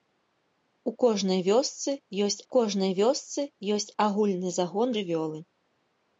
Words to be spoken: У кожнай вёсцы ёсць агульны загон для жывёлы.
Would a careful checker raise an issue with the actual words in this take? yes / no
yes